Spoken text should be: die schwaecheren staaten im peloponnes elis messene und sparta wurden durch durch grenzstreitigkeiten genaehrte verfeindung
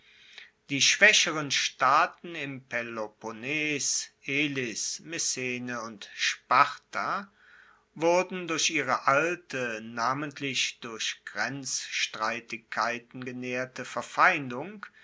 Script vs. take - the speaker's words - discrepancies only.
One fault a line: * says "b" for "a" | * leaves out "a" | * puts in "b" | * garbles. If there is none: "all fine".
* puts in "ihre alte namentlich"